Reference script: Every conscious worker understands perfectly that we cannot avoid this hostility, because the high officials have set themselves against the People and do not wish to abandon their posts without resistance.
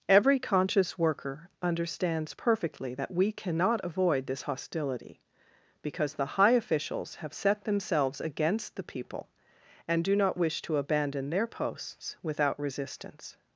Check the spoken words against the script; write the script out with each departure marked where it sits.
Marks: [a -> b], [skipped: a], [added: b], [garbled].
Every conscious worker understands perfectly that we cannot avoid this hostility, because the high officials have set themselves against the People and do not wish to abandon their posts without resistance.